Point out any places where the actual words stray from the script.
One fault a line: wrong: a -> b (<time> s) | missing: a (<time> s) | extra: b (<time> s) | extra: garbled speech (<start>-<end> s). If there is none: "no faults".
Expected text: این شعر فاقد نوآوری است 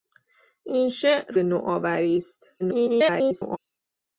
missing: فاقد (1.3 s)
extra: garbled speech (2.6-3.6 s)